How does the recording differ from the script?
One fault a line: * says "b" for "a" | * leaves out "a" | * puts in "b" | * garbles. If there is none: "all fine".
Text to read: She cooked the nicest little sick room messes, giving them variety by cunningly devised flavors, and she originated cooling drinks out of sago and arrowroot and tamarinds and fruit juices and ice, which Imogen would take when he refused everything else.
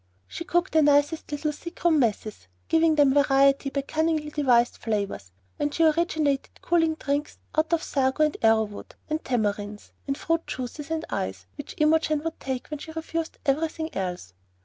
* says "she" for "he"